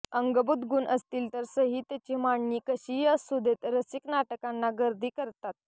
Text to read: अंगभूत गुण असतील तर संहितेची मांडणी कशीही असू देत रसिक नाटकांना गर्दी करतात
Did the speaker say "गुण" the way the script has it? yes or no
yes